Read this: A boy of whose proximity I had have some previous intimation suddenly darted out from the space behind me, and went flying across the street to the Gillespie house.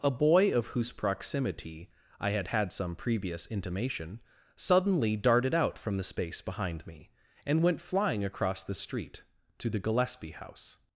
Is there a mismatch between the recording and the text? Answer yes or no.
yes